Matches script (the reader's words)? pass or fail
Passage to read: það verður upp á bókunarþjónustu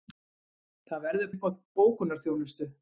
pass